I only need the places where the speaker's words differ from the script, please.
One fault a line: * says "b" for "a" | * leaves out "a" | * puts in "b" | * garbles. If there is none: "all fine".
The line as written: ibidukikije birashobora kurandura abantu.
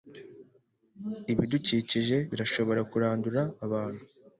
all fine